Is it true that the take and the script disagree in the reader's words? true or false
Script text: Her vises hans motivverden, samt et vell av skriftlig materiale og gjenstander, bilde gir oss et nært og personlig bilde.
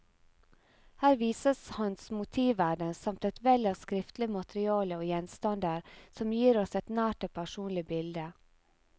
true